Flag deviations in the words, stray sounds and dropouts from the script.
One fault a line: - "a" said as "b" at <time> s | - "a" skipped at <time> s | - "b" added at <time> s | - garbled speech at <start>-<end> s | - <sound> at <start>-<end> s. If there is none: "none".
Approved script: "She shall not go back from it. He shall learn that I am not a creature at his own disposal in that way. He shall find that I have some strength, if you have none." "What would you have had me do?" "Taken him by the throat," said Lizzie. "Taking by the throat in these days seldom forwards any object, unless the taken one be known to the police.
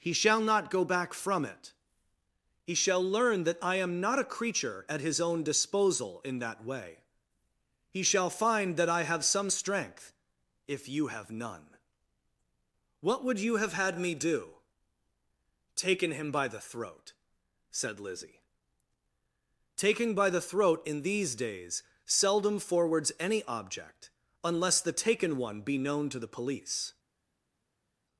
- "She" said as "He" at 0.0 s